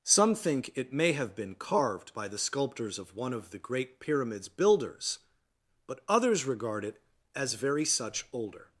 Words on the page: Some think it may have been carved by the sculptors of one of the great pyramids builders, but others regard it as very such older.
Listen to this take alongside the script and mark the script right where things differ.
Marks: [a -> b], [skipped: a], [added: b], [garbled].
Some think it may have been carved by the sculptors of one of the great pyramids builders, but others regard it as very such older.